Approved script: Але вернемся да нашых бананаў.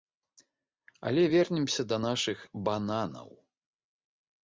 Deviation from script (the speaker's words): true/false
false